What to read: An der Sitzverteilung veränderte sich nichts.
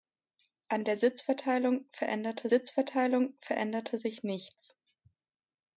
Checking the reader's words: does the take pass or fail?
fail